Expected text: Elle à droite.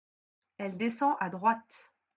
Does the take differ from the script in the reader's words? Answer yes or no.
yes